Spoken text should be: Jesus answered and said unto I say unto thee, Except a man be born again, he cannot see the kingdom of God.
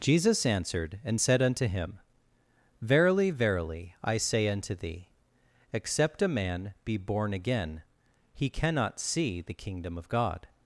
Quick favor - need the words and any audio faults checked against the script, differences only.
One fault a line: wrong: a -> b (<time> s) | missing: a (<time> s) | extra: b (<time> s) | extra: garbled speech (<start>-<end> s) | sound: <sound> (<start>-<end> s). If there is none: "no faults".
extra: him Verily verily (1.7 s)